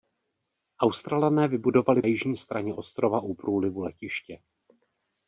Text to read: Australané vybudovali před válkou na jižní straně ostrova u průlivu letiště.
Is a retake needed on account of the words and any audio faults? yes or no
yes